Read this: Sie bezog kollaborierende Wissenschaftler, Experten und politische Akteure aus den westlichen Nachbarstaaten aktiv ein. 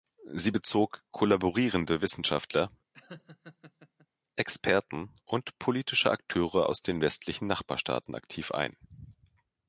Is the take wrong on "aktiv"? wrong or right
right